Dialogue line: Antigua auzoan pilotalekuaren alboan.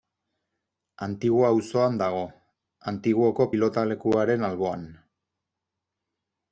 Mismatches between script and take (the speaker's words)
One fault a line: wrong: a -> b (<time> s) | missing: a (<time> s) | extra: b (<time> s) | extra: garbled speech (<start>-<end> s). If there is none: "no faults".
extra: dago Antiguoko (2.0 s)